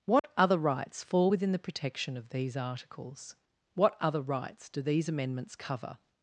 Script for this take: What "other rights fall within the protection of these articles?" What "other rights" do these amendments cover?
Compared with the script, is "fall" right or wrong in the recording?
right